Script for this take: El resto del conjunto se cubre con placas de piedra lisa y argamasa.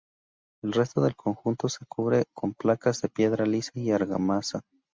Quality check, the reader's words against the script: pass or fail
pass